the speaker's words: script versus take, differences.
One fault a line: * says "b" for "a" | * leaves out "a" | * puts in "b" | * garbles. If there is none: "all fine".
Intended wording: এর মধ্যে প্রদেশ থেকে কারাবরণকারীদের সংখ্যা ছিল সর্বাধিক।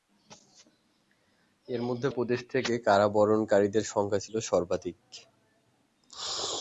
all fine